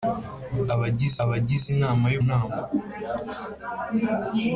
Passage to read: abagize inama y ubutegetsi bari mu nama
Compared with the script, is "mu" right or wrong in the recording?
wrong